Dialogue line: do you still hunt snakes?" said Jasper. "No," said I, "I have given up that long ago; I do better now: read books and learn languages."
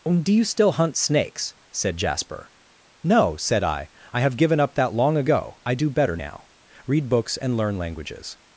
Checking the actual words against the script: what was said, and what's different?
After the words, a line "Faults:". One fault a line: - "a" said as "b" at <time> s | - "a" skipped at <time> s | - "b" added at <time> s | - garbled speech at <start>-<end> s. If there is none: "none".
do you still hunt snakes?" said Jasper. "No," said I, "I have given up that long ago; I do better now: read books and learn languages."
Faults:
none